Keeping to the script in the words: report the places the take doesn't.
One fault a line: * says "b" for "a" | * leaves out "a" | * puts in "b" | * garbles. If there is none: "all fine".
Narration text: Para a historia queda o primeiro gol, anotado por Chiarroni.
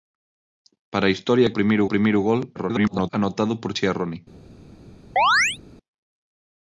* says "primeiro" for "queda"
* garbles